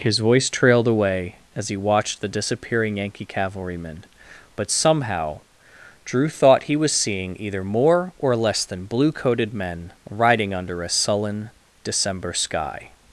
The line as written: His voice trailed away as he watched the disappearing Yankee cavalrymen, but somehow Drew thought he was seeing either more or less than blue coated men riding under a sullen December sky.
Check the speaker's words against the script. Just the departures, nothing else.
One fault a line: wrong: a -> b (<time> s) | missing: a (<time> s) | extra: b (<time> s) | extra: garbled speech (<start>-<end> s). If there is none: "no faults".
no faults